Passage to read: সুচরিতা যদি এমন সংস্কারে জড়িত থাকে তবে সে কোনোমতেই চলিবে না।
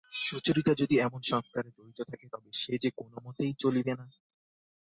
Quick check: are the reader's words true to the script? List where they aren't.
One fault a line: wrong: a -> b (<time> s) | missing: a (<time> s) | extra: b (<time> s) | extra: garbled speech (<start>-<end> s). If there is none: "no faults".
extra: যে (2.8 s)